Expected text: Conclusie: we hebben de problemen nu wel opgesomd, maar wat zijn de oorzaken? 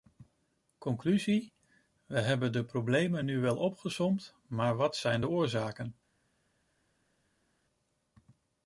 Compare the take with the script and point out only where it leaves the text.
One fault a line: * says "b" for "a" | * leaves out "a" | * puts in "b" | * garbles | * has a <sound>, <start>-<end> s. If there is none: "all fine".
all fine